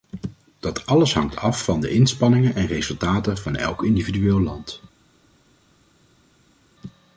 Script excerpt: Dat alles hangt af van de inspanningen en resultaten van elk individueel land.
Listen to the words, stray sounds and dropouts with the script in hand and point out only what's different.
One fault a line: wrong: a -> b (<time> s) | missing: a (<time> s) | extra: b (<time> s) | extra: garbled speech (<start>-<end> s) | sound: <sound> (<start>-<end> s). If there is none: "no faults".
no faults